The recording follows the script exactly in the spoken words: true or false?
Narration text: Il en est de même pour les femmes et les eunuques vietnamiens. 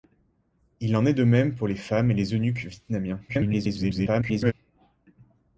false